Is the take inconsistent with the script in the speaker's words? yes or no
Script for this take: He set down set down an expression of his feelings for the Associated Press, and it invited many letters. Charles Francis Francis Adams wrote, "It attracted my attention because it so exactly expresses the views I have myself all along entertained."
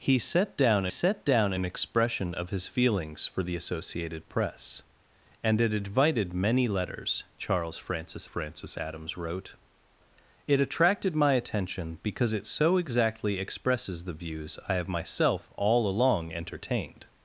no